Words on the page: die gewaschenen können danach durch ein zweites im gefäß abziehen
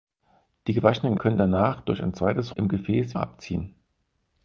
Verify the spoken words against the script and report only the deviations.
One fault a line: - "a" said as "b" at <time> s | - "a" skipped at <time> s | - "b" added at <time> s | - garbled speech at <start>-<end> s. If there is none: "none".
none